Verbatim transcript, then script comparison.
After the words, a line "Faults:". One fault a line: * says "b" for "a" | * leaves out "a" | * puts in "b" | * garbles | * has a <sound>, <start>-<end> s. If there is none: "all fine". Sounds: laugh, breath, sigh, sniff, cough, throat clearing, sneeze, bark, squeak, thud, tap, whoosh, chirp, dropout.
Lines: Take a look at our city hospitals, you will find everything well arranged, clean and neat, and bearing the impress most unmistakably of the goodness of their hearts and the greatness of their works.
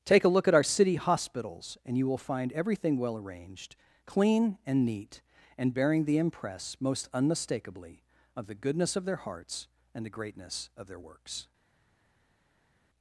Take a look at our city hospitals, and you will find everything well arranged, clean and neat, and bearing the impress most unmistakably of the goodness of their hearts and the greatness of their works.
Faults:
* puts in "and"